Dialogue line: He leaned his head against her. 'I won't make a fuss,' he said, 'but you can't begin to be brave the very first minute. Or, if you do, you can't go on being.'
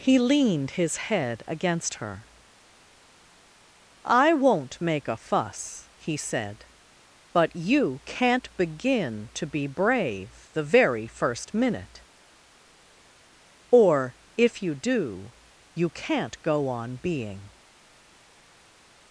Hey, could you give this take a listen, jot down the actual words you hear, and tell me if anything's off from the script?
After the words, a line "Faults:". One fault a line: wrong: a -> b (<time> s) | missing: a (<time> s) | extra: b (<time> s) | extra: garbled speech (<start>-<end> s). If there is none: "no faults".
He leaned his head against her. 'I won't make a fuss,' he said, 'but you can't begin to be brave the very first minute. Or, if you do, you can't go on being.'
Faults:
no faults